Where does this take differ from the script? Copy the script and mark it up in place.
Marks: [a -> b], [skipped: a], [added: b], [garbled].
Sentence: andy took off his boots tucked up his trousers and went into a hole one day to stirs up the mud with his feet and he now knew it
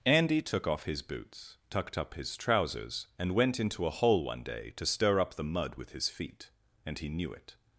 andy took off his boots tucked up his trousers and went into a hole one day to [stirs -> stir] up the mud with his feet and he [skipped: now] knew it